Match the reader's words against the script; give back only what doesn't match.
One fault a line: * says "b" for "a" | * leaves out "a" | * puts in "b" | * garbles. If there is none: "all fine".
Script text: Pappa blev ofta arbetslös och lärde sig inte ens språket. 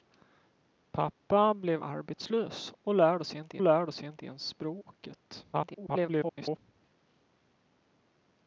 * leaves out "ofta"
* puts in "lärde sig inte"
* garbles